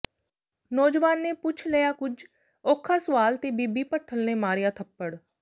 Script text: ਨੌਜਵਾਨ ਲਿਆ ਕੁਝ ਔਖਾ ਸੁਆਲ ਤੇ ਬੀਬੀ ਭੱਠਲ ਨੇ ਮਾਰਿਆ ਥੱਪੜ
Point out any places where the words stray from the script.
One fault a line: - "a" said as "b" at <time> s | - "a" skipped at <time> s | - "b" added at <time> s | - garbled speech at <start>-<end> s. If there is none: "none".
- "ਨੇ ਪੁੱਛ" added at 1.2 s